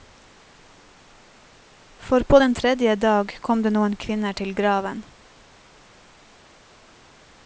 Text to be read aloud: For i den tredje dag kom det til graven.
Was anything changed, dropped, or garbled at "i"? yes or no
yes